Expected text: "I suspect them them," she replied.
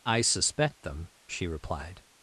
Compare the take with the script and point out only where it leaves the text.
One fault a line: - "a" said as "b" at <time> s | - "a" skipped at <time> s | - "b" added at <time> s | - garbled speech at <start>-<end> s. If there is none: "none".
- "them" skipped at 1.1 s